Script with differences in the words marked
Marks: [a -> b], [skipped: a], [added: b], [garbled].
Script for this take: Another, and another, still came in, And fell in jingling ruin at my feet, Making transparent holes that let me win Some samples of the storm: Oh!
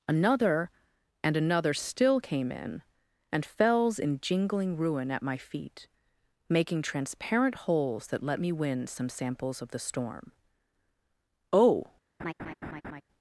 Another, and another, still came in, And [fell -> fells] in jingling ruin at my feet, Making transparent holes that let me win Some samples of the storm: Oh!